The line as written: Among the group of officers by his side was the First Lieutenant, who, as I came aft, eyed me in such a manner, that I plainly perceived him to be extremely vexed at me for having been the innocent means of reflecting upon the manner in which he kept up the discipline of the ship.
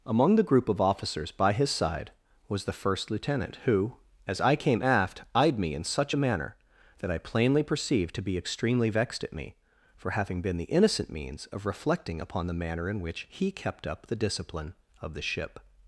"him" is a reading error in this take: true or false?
true